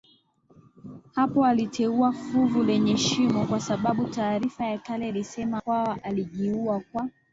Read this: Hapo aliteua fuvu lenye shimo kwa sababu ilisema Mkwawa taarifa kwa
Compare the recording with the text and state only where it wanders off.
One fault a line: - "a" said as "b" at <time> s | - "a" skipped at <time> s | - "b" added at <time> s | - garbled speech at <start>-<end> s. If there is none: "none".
- "taarifa ya kale" added at 4.1 s
- "taarifa" said as "alijiua" at 6.0 s